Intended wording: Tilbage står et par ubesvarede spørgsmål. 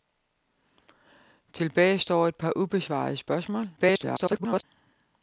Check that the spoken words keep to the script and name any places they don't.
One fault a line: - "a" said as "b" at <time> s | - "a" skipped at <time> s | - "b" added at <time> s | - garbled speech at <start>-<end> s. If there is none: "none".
- garbled speech at 3.8-4.6 s